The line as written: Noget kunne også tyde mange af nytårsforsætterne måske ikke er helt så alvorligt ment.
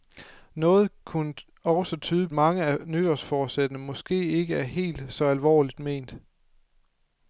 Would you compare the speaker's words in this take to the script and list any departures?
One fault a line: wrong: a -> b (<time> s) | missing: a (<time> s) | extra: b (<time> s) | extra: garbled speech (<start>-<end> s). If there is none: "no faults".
no faults